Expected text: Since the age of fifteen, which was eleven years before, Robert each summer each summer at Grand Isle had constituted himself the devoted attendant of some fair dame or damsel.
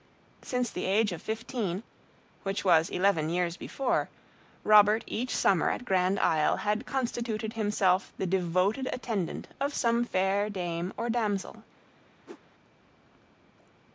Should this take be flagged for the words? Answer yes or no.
yes